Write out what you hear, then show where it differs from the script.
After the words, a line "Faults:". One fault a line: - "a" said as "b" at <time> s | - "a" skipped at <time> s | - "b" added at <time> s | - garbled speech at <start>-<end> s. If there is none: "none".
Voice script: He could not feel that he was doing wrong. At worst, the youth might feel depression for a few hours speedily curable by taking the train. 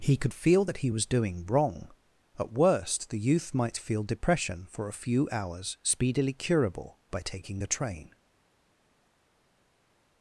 He could feel that he was doing wrong. At worst, the youth might feel depression for a few hours speedily curable by taking the train.
Faults:
- "not" skipped at 0.3 s